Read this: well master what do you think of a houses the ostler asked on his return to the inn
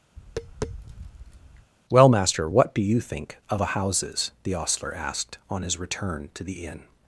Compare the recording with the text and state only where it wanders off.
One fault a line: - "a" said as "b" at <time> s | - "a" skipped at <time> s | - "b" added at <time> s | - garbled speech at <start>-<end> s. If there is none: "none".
none